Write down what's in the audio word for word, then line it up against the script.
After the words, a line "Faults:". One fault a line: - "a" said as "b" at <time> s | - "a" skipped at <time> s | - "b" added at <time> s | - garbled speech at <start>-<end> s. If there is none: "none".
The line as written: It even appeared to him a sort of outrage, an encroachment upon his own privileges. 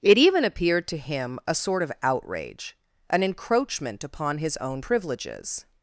It even appeared to him a sort of outrage, an encroachment upon his own privileges.
Faults:
none